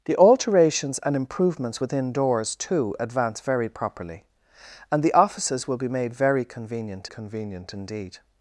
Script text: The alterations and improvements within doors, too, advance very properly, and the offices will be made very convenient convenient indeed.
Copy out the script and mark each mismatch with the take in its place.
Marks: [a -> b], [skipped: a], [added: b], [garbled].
The alterations and improvements within doors, too, advance very properly, and the offices will be made very convenient convenient indeed.